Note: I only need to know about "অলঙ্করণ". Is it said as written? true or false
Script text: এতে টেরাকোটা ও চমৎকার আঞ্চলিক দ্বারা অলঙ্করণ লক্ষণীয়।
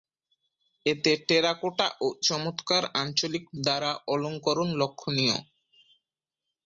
true